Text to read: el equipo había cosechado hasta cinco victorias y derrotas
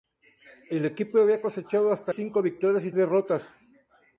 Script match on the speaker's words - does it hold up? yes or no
yes